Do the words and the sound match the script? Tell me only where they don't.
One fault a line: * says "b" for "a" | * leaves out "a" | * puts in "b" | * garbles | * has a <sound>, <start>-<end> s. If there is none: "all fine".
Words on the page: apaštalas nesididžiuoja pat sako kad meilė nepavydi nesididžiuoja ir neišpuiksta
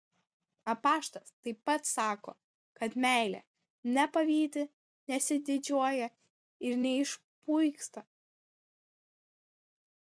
* says "taip" for "nesididžiuoja"